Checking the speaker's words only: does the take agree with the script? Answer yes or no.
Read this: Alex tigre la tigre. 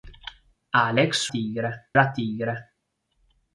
yes